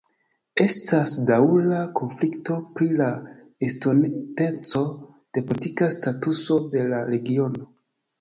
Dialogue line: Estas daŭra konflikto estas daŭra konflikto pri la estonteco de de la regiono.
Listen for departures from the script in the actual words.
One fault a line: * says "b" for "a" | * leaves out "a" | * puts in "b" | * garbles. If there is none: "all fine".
* leaves out "estas daŭra konflikto"
* puts in "politika statuso"